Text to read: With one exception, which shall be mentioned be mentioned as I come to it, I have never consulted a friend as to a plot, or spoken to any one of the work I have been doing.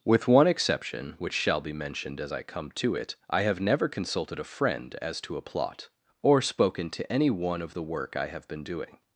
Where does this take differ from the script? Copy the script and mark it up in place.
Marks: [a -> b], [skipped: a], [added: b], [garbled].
With one exception, which shall be mentioned [skipped: be mentioned] as I come to it, I have never consulted a friend as to a plot, or spoken to any one of the work I have been doing.